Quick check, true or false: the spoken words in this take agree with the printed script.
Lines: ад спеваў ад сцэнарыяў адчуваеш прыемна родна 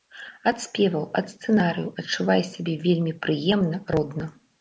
false